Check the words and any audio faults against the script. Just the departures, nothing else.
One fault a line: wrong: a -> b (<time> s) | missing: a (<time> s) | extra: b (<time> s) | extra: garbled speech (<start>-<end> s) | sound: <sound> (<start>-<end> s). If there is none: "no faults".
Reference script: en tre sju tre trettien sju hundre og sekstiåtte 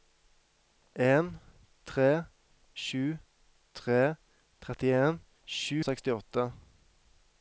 missing: hundre (5.8 s)